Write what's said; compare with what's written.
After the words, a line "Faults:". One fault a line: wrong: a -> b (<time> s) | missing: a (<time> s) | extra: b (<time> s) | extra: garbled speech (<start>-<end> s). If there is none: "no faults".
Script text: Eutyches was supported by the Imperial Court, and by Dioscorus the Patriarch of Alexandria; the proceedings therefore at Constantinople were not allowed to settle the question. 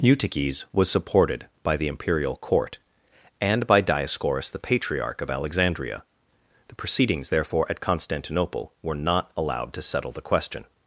Eutyches was supported by the Imperial Court, and by Dioscorus the Patriarch of Alexandria; the proceedings therefore at Constantinople were not allowed to settle the question.
Faults:
no faults